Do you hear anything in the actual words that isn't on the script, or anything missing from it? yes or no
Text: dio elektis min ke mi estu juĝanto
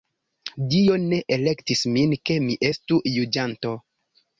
yes